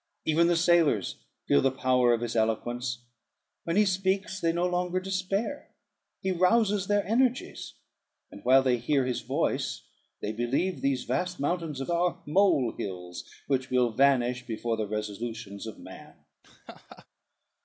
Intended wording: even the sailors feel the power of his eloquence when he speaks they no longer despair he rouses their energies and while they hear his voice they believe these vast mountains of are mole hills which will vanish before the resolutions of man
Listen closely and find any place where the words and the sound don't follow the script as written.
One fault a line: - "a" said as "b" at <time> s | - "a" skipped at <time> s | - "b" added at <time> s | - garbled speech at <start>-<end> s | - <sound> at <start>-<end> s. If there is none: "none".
- laugh at 16.4-17.1 s